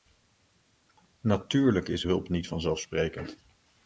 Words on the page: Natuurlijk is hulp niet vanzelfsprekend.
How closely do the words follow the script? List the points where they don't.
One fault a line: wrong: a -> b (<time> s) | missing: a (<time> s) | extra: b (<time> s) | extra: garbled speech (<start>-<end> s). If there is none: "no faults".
no faults